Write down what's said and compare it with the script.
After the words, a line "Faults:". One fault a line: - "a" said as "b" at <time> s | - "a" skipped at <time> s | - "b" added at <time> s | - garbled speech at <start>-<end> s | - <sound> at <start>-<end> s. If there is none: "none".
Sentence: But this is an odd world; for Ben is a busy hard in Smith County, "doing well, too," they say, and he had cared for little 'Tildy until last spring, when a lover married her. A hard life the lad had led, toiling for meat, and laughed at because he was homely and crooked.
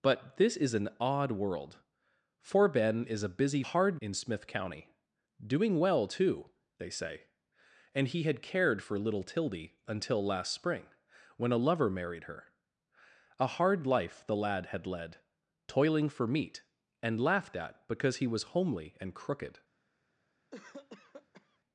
But this is an odd world; for Ben is a busy hard in Smith County, "doing well, too," they say, and he had cared for little 'Tildy until last spring, when a lover married her. A hard life the lad had led, toiling for meat, and laughed at because he was homely and crooked.
Faults:
- cough at 20.5-21.6 s